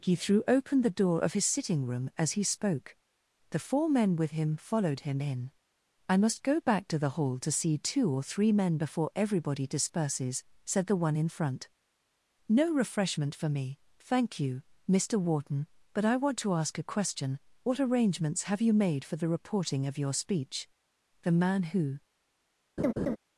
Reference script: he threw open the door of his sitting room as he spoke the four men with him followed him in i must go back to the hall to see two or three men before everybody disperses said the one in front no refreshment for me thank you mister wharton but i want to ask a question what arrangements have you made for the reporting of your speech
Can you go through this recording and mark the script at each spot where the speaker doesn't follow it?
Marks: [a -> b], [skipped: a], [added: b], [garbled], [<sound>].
he threw open the door of his sitting room as he spoke the four men with him followed him in i must go back to the hall to see two or three men before everybody disperses said the one in front no refreshment for me thank you mister wharton but i want to ask a question what arrangements have you made for the reporting of your speech [added: the man who] [laugh]